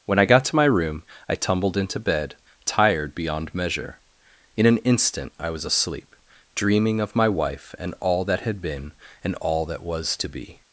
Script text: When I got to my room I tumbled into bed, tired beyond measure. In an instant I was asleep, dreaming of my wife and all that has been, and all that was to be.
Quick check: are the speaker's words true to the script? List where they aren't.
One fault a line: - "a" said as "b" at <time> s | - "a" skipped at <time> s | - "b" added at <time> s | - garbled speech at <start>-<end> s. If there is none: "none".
- "has" said as "had" at 8.4 s